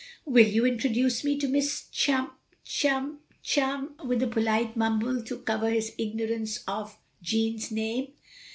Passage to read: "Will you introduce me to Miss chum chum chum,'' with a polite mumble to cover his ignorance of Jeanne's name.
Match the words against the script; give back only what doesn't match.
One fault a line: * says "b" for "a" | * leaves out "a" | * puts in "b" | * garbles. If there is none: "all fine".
all fine